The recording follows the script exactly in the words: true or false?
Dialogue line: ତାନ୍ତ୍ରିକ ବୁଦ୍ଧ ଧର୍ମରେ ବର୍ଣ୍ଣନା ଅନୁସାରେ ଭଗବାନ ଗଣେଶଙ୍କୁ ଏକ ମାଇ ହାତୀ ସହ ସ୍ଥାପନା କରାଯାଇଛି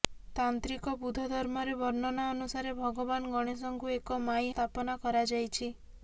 false